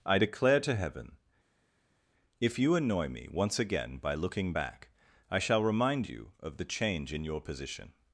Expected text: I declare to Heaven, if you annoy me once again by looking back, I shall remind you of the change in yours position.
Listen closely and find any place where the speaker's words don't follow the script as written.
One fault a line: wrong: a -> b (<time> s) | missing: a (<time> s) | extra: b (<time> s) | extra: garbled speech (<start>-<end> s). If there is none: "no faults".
wrong: yours -> your (7.3 s)